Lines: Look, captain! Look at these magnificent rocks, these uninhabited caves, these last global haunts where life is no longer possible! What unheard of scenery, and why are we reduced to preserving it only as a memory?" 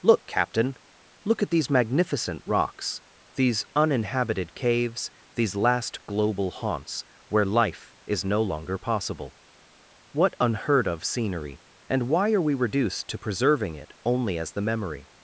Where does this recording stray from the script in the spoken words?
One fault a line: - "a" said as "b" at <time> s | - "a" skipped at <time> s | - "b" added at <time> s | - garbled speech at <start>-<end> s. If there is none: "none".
- "a" said as "the" at 14.5 s